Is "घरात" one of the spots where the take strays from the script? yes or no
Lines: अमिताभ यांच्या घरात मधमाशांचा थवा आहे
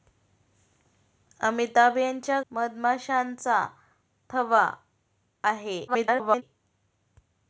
yes